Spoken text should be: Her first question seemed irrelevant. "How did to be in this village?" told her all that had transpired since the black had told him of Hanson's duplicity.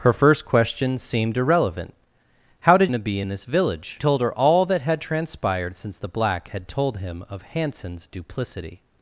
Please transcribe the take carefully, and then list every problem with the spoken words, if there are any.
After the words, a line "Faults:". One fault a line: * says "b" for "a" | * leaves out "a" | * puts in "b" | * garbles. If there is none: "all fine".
Her first question seemed irrelevant. "How did to be in this village?" told her all that had transpired since the black had told him of Hanson's duplicity.
Faults:
all fine